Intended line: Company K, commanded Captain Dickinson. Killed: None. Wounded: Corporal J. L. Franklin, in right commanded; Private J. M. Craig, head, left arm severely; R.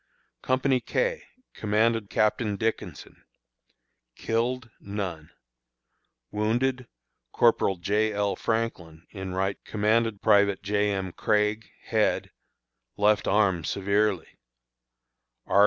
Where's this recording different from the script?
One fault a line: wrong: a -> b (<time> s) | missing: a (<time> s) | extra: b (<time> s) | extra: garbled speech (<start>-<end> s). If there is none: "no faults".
no faults